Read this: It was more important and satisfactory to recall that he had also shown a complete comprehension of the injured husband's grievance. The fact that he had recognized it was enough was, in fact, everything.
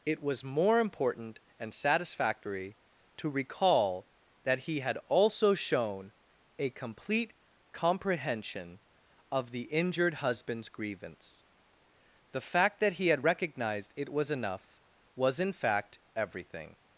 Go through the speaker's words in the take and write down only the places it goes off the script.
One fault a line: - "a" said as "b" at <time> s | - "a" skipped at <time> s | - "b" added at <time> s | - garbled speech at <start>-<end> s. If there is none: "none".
none